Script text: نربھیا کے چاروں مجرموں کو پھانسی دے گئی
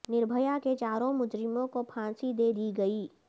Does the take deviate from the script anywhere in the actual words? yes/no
yes